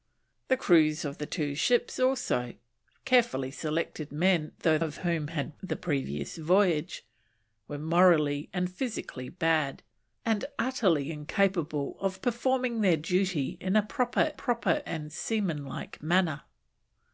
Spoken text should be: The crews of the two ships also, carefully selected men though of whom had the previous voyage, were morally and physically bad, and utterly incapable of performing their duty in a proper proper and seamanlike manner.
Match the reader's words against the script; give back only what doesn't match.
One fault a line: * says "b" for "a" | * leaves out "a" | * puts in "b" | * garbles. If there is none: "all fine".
all fine